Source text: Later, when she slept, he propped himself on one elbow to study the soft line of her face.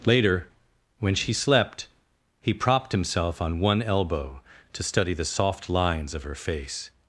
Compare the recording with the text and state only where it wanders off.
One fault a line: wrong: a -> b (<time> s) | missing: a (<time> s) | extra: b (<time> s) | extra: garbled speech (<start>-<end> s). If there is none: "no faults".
wrong: line -> lines (5.7 s)